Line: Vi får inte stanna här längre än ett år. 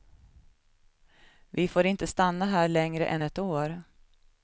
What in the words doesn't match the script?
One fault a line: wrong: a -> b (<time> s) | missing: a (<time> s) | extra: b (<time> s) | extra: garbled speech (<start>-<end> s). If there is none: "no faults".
no faults